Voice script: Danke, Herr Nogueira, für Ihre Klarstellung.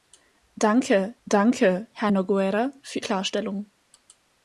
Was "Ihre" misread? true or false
true